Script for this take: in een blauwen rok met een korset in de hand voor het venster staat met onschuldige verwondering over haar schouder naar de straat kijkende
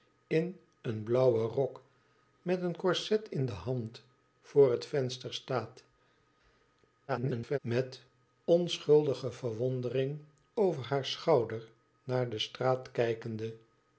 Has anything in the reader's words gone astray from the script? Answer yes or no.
yes